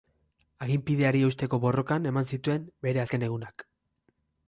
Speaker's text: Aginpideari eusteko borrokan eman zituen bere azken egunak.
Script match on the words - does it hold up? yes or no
yes